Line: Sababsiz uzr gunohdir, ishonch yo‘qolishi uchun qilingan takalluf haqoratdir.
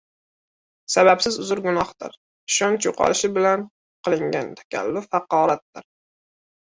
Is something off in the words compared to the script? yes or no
yes